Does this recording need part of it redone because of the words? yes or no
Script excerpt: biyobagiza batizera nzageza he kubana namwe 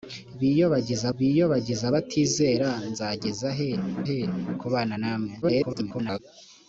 yes